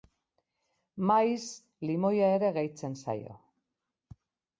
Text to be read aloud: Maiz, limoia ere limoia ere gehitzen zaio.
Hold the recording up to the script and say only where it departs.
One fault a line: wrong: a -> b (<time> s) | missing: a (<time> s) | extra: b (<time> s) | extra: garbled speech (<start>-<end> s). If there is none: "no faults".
missing: limoia ere (2.5 s)